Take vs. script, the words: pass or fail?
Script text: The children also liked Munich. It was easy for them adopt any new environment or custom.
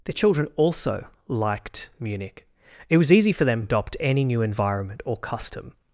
pass